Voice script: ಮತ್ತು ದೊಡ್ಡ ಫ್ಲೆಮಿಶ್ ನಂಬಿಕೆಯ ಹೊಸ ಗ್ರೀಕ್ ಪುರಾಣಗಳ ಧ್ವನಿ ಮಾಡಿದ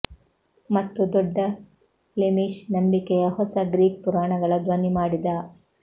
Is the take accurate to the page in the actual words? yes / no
yes